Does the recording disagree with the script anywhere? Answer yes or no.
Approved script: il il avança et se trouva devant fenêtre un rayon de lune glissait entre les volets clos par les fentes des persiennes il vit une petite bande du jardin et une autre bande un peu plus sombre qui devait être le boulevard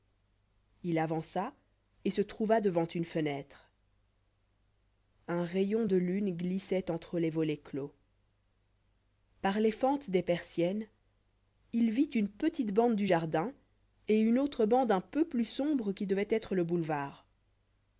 yes